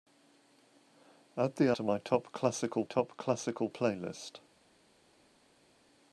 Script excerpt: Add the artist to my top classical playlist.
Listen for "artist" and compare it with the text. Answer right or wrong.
wrong